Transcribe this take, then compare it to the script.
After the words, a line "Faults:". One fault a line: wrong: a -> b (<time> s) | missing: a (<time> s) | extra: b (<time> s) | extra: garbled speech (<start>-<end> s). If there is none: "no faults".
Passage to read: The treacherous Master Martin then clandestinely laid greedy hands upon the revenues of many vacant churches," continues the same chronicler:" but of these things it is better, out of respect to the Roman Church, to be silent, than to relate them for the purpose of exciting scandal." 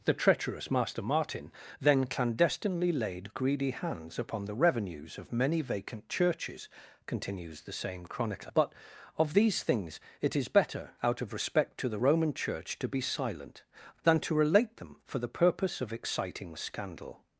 The treacherous Master Martin then clandestinely laid greedy hands upon the revenues of many vacant churches," continues the same chronicler:" but of these things it is better, out of respect to the Roman Church, to be silent, than to relate them for the purpose of exciting scandal."
Faults:
no faults